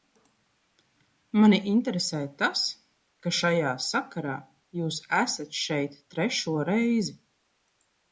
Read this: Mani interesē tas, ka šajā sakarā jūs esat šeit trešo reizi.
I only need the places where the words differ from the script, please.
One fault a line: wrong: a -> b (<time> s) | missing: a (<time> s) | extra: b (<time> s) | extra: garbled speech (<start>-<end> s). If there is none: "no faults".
no faults